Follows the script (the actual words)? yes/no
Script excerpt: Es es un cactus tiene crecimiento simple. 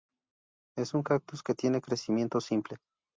no